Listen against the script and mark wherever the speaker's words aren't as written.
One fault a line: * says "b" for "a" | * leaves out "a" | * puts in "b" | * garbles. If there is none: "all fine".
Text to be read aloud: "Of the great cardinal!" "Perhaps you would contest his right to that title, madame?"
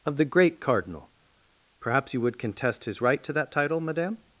all fine